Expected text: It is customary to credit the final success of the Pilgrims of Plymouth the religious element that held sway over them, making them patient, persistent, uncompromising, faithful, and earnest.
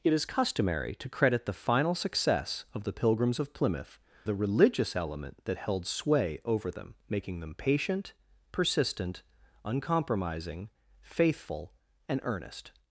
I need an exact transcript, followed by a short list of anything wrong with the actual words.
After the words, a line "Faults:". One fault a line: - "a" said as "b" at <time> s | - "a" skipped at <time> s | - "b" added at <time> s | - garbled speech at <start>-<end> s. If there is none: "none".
It is customary to credit the final success of the Pilgrims of Plymouth the religious element that held sway over them, making them patient, persistent, uncompromising, faithful, and earnest.
Faults:
none